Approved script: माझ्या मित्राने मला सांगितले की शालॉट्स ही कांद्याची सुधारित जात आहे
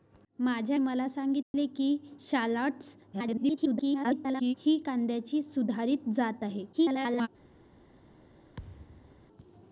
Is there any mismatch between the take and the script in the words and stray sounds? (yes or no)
yes